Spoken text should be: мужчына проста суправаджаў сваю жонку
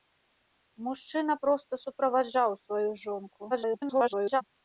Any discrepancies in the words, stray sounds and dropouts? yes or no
yes